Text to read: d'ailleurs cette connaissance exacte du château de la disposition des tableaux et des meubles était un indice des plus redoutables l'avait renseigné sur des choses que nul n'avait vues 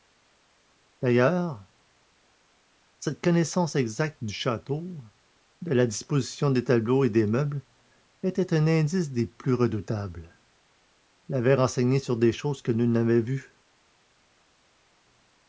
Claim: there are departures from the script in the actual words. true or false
false